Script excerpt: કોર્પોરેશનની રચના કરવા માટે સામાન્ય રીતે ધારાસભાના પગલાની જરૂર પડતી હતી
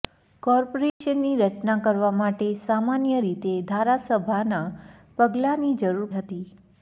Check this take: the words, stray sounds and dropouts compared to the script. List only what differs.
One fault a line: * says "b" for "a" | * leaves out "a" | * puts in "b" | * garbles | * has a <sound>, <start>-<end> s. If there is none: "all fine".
* has a dropout, 0.9-1.0 s
* leaves out "પડતી"